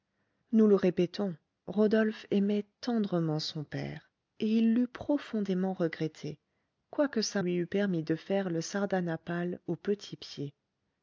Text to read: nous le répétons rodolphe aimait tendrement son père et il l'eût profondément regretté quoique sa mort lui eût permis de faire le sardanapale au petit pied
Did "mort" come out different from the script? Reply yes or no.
yes